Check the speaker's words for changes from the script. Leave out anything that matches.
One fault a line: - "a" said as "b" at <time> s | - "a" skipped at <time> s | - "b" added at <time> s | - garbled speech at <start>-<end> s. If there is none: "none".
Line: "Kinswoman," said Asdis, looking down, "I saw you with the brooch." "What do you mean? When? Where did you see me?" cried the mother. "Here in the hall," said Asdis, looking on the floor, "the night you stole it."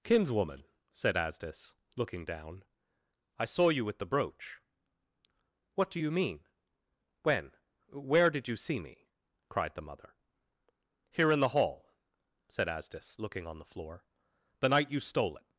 none